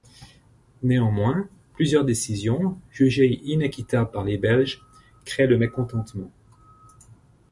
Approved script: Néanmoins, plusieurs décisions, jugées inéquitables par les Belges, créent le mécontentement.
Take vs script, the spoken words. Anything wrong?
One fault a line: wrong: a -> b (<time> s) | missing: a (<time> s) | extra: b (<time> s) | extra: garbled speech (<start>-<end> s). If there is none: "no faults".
no faults